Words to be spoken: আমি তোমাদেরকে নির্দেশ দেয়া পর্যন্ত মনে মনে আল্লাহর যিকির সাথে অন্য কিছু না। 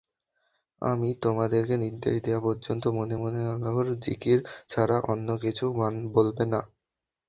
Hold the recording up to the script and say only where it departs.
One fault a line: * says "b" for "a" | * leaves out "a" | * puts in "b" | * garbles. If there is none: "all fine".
* says "ছাড়া" for "সাথে"
* puts in "বলবে"